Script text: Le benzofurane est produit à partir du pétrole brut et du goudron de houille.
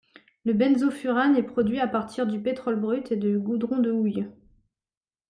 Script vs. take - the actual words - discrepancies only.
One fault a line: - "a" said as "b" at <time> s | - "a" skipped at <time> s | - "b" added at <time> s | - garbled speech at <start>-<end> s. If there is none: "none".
none